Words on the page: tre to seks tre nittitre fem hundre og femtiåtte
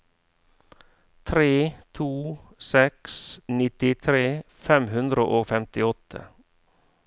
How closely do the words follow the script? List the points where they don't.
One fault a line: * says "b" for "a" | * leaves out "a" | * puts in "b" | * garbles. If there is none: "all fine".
* leaves out "tre"